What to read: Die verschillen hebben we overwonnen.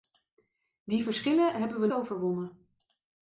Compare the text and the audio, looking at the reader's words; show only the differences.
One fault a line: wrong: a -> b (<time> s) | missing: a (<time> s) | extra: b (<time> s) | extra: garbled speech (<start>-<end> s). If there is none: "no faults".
no faults